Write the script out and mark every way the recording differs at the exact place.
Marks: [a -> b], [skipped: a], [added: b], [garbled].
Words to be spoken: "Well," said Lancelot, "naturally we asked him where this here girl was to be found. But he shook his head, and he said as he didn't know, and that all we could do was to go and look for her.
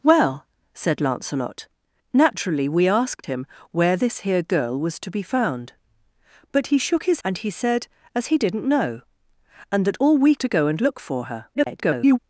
"Well," said Lancelot, "naturally we asked him where this here girl was to be found. But he shook his [skipped: head,] and he said as he didn't know, and that all we [skipped: could do was] to go and look for her. [garbled]